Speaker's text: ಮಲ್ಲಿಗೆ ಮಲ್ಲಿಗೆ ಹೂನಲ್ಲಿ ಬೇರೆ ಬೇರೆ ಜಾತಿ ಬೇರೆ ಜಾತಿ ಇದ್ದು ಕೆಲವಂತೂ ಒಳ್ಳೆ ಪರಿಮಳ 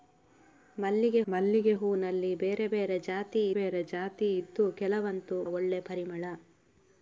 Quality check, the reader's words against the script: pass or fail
pass